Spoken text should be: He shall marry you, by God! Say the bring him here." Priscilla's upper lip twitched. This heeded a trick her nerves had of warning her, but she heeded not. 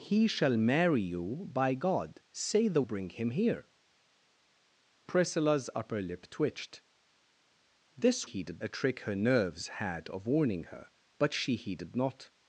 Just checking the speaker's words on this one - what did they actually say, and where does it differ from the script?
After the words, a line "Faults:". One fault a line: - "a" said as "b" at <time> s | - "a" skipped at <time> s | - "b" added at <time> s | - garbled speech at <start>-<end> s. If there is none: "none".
He shall marry you, by God! Say the bring him here." Priscilla's upper lip twitched. This heeded a trick her nerves had of warning her, but she heeded not.
Faults:
none